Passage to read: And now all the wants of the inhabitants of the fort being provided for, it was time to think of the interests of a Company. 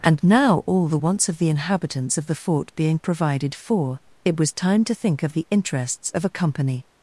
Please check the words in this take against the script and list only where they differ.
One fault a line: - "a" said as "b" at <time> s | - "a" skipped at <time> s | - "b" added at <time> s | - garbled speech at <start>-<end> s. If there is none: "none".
none